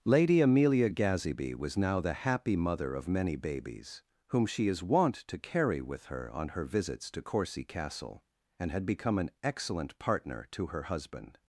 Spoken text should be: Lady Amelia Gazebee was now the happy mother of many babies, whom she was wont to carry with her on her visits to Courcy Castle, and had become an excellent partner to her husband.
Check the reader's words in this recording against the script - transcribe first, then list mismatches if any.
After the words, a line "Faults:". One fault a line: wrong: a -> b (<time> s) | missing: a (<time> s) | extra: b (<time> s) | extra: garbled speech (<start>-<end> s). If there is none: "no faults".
Lady Amelia Gazebee was now the happy mother of many babies, whom she is wont to carry with her on her visits to Courcy Castle, and had become an excellent partner to her husband.
Faults:
wrong: was -> is (4.7 s)